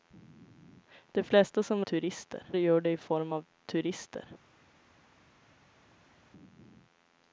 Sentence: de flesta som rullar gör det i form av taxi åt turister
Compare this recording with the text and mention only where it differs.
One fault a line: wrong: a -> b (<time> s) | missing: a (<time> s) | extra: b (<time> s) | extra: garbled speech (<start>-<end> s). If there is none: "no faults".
wrong: rullar -> turister (1.8 s)
missing: taxi åt (3.5 s)